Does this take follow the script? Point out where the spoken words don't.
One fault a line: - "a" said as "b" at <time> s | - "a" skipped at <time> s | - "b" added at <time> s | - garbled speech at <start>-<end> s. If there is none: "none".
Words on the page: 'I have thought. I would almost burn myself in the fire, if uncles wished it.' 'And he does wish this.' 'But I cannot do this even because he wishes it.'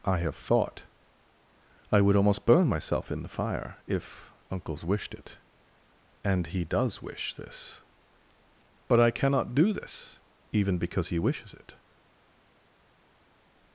none